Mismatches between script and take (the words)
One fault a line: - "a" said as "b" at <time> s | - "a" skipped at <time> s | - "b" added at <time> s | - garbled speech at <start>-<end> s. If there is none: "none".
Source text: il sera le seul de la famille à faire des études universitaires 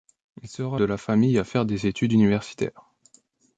- "le seul" skipped at 0.8 s